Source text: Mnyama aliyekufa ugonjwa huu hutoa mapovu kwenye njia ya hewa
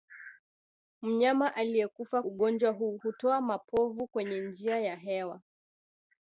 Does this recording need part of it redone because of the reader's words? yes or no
no